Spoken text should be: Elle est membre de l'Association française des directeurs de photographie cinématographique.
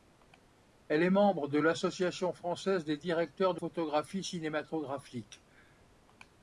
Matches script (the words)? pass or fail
pass